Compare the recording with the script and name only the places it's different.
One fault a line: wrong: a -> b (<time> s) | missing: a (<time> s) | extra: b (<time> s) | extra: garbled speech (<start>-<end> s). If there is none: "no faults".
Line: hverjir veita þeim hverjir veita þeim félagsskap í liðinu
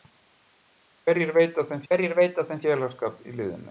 no faults